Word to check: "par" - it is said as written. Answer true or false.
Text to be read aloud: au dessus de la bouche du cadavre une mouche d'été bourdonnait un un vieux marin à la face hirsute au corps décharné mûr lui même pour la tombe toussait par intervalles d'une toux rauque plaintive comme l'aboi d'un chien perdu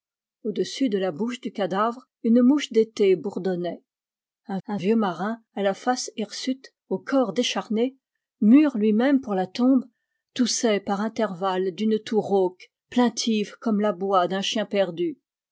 true